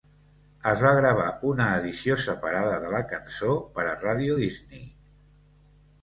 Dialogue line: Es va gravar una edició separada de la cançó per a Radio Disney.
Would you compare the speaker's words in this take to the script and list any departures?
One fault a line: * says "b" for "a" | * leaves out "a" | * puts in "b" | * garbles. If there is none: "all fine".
all fine